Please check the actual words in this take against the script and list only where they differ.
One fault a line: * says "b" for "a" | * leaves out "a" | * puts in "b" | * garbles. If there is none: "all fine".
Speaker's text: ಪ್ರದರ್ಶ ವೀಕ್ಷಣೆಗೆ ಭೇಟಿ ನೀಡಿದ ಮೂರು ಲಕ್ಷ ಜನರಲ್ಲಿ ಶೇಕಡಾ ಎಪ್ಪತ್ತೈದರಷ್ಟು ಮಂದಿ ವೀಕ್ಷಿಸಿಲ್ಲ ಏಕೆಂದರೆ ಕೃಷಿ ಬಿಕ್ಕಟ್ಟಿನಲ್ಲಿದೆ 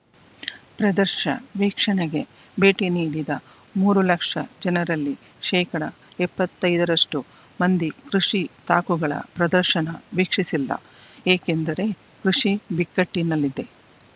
* puts in "ಕೃಷಿ ತಾಕುಗಳ ಪ್ರದರ್ಶನ"